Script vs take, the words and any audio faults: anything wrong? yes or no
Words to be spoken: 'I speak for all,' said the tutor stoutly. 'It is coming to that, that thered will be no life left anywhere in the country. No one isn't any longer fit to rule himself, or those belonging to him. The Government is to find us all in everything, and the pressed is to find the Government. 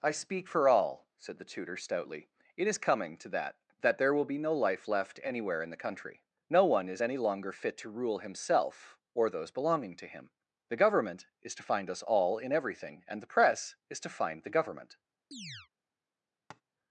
yes